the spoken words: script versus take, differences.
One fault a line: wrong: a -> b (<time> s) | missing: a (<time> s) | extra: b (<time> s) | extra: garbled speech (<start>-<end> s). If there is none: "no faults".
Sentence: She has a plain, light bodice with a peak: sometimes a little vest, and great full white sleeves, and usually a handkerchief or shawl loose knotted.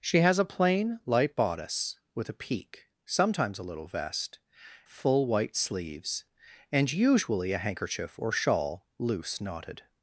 missing: and great (4.4 s)